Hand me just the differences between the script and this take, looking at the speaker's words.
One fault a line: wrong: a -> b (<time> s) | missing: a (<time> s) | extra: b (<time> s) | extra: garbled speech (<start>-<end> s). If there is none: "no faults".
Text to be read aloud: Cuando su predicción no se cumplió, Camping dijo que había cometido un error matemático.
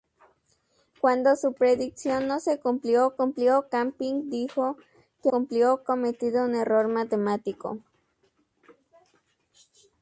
extra: cumplió (3.1 s)
wrong: había -> cumplió (5.3 s)